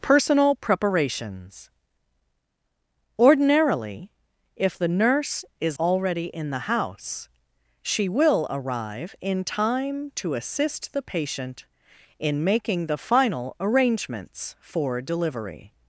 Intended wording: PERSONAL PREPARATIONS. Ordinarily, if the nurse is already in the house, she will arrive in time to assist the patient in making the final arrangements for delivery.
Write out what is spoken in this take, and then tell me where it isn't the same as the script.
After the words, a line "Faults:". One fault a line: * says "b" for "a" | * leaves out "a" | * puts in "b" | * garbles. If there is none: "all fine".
PERSONAL PREPARATIONS. Ordinarily, if the nurse is already in the house, she will arrive in time to assist the patient in making the final arrangements for delivery.
Faults:
all fine